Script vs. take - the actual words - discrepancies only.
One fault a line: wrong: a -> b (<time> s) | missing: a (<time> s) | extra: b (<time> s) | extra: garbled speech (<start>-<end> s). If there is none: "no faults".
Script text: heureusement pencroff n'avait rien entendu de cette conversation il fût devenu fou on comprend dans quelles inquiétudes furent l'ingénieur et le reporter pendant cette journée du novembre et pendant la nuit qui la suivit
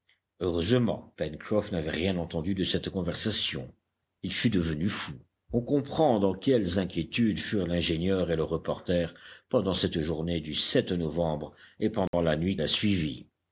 missing: qui (12.6 s)